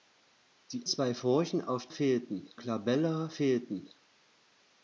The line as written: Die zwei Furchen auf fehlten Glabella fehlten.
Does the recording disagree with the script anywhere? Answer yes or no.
no